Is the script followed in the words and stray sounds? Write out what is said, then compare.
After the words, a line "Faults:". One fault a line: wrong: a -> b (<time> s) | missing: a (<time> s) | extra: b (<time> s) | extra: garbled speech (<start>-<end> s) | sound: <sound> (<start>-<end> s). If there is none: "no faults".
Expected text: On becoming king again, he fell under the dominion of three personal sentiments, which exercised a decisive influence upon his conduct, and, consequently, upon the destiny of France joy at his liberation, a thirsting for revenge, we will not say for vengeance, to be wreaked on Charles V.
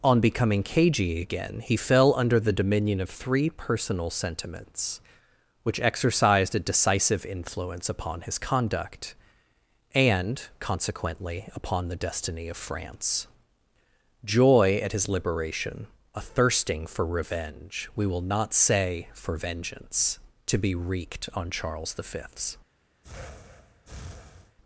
On becoming cagey again, he fell under the dominion of three personal sentiments, which exercised a decisive influence upon his conduct, and, consequently, upon the destiny of France joy at his liberation, a thirsting for revenge, we will not say for vengeance, to be wreaked on Charles V.
Faults:
wrong: king -> cagey (0.6 s)
sound: breath (23.0-24.6 s)